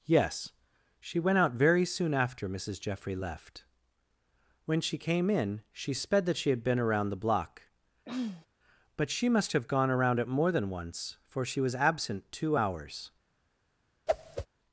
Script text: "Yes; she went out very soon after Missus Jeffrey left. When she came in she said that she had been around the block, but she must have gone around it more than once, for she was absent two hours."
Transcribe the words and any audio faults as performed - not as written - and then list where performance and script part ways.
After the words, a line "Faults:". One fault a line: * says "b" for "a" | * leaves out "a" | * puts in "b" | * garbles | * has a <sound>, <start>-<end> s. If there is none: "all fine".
"Yes; she went out very soon after Missus Jeffrey left. When she came in she sped that she had been around the block, but she must have gone around it more than once, for she was absent two hours."
Faults:
* says "sped" for "said"
* has a throat clearing, 8.0-8.5 s
* has a whoosh, 14.1-14.5 s